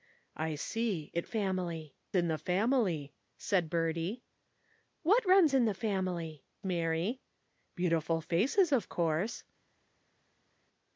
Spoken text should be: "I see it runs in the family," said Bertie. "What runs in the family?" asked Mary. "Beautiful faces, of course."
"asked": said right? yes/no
no